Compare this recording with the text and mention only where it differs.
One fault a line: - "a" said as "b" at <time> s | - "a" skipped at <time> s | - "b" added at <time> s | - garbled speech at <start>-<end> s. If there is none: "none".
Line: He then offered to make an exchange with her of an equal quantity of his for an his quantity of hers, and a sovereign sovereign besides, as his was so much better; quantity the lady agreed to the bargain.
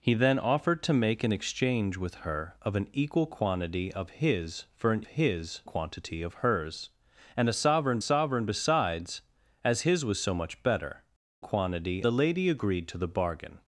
none